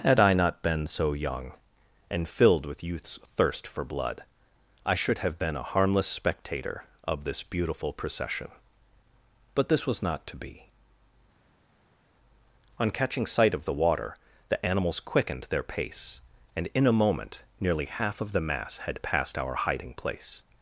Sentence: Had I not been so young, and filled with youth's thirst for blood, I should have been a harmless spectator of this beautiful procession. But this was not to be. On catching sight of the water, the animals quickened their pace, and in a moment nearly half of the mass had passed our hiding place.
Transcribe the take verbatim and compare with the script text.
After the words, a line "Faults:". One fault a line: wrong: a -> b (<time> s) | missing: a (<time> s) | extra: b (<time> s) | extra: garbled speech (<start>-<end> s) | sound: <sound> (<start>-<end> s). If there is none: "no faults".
Had I not been so young, and filled with youth's thirst for blood, I should have been a harmless spectator of this beautiful procession. But this was not to be. On catching sight of the water, the animals quickened their pace, and in a moment nearly half of the mass had passed our hiding place.
Faults:
no faults